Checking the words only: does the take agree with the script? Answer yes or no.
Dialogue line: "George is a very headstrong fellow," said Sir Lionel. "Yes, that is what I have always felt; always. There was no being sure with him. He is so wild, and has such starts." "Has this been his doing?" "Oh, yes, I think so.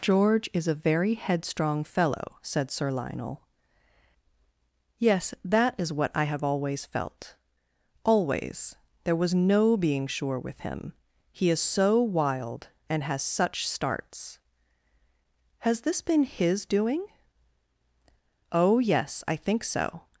yes